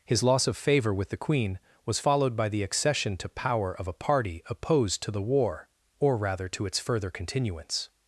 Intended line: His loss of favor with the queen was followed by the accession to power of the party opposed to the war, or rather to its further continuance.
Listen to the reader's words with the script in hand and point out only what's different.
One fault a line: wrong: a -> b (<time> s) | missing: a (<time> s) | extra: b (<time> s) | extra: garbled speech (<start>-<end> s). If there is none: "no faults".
wrong: the -> a (3.9 s)